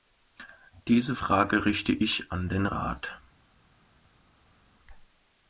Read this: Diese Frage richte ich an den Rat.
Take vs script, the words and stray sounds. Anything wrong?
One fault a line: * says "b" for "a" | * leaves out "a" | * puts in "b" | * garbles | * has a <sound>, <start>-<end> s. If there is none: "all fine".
all fine